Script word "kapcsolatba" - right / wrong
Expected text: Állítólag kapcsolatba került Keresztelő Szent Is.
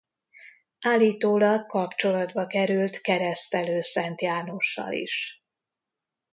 right